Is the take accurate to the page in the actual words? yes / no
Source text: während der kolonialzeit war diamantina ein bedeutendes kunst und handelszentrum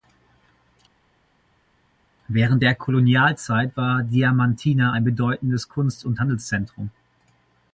yes